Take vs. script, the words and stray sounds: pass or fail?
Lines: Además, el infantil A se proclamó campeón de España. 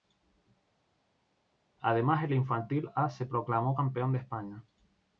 pass